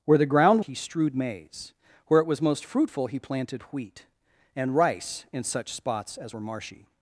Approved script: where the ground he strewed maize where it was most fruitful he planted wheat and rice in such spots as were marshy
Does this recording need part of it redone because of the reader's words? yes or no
no